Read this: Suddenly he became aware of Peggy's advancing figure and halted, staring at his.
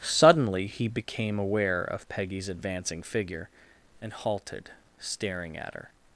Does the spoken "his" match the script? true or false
false